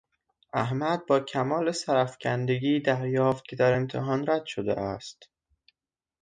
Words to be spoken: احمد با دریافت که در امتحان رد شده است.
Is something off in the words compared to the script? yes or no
yes